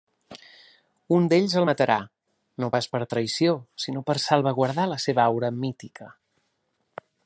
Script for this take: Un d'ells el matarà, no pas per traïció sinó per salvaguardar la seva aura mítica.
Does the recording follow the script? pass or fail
pass